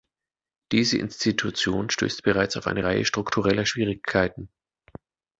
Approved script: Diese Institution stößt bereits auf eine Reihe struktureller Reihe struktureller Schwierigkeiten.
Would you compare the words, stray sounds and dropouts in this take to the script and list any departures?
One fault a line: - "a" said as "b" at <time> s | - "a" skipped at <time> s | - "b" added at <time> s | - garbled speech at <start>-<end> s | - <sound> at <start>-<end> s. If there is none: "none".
- "Reihe struktureller" skipped at 3.6 s